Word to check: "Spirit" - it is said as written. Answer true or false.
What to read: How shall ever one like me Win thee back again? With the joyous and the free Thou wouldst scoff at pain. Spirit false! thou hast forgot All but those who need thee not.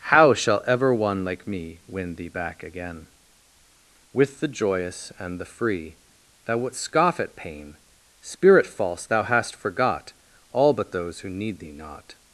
true